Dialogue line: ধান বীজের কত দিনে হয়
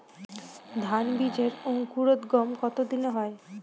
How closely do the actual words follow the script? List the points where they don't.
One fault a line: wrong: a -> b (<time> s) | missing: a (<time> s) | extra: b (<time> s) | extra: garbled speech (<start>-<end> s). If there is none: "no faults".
extra: অঙ্কুরোদগম (1.6 s)